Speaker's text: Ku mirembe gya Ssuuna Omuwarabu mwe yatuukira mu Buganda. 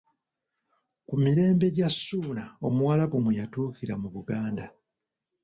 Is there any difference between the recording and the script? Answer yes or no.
no